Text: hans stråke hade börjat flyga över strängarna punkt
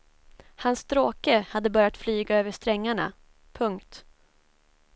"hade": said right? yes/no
yes